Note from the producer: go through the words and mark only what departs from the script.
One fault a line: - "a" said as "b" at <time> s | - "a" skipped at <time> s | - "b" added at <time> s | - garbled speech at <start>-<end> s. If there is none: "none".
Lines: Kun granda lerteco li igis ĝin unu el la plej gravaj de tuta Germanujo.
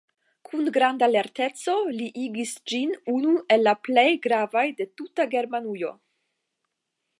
none